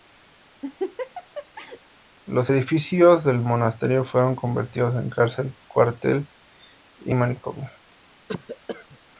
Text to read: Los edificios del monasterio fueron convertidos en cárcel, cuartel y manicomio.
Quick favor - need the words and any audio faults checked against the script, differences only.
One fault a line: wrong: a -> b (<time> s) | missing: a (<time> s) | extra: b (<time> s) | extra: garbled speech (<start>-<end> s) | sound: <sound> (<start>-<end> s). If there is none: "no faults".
sound: laugh (0.6-1.8 s)
sound: cough (8.3-9.0 s)